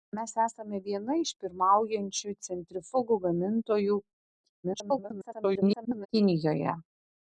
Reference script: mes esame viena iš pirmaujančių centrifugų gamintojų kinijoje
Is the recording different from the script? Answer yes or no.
yes